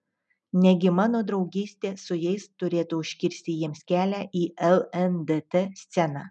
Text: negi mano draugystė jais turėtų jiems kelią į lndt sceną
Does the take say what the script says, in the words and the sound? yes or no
no